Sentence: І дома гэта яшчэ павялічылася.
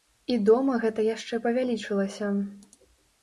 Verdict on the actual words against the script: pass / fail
pass